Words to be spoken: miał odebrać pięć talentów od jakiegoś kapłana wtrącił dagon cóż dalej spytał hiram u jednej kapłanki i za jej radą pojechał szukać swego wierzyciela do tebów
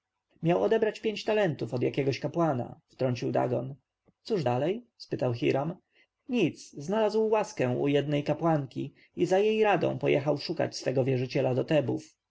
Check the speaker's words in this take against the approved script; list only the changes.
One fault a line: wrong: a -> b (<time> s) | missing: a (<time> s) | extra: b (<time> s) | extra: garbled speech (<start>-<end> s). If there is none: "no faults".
extra: nic znalazł łaskę (6.3 s)